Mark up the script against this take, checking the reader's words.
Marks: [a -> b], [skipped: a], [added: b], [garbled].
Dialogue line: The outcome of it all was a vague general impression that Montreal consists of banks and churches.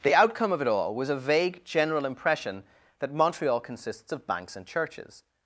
The outcome of it all was a vague general impression that Montreal consists of banks and churches.